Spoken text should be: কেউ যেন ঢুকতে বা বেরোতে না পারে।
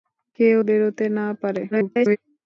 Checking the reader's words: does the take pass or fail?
fail